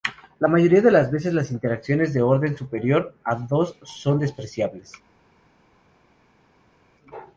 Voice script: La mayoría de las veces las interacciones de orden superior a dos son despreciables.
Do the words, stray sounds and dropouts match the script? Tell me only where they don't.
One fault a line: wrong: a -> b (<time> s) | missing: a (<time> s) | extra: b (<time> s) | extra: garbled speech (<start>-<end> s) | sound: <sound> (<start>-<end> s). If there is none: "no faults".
no faults